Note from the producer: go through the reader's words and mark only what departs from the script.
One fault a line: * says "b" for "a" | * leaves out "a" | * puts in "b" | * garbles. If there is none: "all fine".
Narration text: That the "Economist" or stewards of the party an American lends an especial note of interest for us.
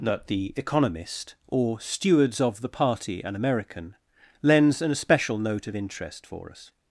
all fine